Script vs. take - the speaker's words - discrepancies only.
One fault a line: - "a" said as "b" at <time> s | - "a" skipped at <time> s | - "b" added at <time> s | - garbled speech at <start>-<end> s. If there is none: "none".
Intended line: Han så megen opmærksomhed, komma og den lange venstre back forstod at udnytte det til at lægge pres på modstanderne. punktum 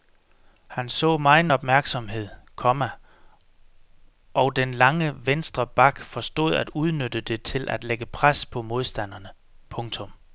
none